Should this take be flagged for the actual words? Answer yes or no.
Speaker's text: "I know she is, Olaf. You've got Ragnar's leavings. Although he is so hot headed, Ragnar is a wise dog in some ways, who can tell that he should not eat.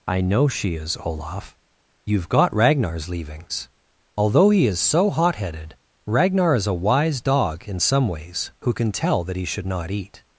no